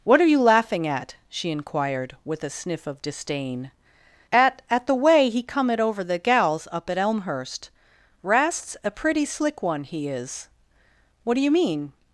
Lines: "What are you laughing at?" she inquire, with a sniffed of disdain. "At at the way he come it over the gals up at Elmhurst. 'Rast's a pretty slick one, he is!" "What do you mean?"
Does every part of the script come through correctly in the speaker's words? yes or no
no